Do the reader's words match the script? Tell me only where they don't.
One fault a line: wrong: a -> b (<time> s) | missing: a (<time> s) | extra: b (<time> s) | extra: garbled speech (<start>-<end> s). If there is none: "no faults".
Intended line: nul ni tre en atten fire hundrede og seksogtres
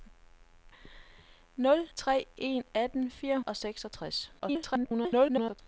missing: ni (1.9 s)
missing: hundrede (3.4 s)
extra: garbled speech (4.4-5.6 s)